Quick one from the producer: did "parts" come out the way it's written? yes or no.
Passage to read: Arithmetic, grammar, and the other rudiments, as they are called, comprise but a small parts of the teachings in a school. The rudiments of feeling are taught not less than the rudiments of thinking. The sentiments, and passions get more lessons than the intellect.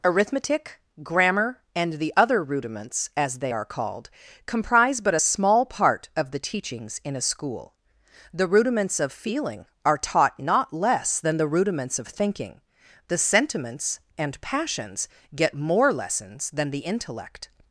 no